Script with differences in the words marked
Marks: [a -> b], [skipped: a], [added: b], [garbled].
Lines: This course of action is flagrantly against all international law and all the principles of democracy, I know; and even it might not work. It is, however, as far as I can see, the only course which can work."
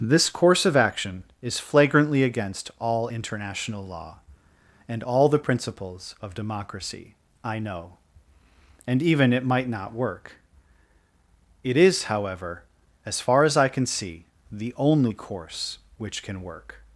This course of action is flagrantly against all international law and all the principles of democracy, I know; and even it might not work. It is, however, as far as I can see, the only course which can work."